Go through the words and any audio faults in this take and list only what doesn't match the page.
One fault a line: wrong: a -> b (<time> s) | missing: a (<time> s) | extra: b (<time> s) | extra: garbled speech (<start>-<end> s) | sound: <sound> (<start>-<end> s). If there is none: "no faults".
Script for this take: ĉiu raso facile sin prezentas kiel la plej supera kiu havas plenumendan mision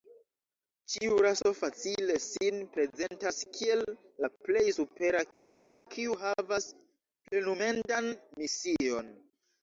no faults